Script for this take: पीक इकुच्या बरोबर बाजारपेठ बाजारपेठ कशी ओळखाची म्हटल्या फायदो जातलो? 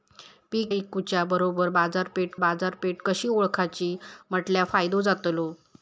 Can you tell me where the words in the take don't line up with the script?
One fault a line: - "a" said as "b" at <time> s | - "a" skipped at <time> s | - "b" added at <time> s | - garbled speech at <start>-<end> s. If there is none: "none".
none